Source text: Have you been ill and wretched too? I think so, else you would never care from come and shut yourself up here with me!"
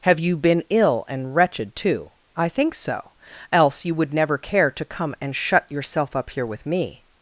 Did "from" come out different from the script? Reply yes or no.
yes